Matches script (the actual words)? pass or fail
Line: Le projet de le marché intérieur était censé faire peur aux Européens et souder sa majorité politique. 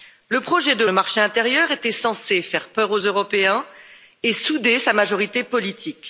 pass